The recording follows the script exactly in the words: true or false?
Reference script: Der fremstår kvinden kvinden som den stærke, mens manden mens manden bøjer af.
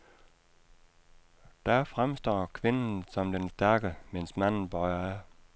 false